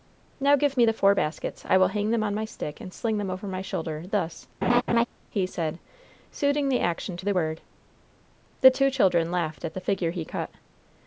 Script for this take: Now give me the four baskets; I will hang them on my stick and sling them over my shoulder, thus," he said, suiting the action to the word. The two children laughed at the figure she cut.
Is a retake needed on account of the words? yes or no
yes